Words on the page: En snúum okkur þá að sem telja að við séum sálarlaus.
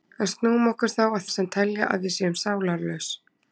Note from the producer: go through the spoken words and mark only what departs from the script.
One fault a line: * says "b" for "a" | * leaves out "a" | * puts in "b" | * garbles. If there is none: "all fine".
all fine